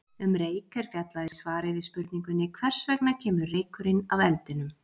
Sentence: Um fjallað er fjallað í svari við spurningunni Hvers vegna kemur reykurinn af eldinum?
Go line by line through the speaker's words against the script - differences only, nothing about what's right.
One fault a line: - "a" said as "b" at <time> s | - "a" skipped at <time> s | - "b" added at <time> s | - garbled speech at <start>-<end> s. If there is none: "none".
- "fjallað" said as "reyk" at 0.4 s